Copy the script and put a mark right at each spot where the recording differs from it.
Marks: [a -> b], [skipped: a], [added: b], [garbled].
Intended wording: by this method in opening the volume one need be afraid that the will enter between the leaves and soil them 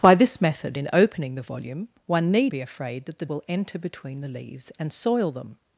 by this method in opening the volume one need be afraid that the will enter between the leaves and soil them